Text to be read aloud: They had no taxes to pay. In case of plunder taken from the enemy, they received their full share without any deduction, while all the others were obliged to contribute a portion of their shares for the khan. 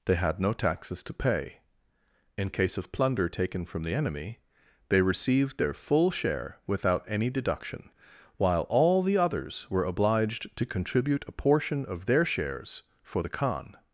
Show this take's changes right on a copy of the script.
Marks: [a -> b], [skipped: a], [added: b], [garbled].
They had no taxes to pay. In case of plunder taken from the enemy, they received their full share without any deduction, while all the others were obliged to contribute a portion of their shares for the khan.